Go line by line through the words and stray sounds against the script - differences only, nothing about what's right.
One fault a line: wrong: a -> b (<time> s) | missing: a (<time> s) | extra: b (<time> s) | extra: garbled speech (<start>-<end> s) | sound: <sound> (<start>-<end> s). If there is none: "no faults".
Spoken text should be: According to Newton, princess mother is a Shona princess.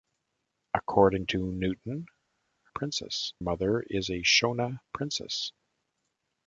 no faults